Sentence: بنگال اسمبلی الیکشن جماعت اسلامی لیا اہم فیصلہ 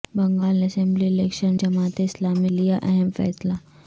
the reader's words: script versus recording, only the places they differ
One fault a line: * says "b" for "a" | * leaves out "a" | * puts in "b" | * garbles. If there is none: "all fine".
all fine